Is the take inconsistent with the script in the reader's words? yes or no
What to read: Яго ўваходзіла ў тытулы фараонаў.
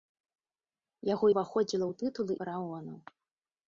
no